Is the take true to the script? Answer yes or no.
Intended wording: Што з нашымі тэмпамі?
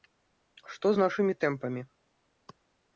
yes